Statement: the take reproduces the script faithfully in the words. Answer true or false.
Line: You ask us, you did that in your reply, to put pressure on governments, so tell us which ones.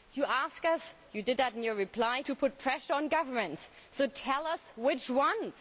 true